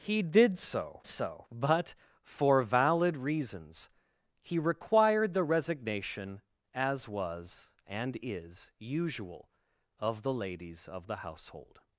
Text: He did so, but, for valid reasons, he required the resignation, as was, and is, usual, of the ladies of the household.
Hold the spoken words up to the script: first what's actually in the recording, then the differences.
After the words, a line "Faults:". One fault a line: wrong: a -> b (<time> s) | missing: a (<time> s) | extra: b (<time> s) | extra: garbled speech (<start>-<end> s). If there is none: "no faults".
He did so so, but, for valid reasons, he required the resignation, as was, and is, usual, of the ladies of the household.
Faults:
extra: so (1.0 s)